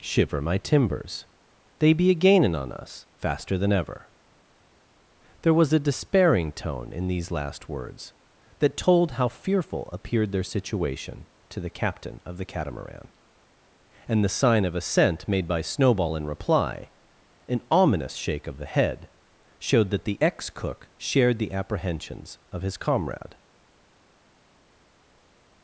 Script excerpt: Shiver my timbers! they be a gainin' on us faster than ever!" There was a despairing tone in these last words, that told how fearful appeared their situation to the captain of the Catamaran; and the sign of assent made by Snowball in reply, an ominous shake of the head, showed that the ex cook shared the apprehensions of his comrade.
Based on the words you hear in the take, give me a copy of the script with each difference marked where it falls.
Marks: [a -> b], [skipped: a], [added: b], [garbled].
Shiver my timbers! they be a gainin' on us faster than ever!" There was a despairing tone in these last words, that told how fearful appeared their situation to the captain of the Catamaran; and the sign of assent made by Snowball in reply, an ominous shake of the head, showed that the ex cook shared the apprehensions of his comrade.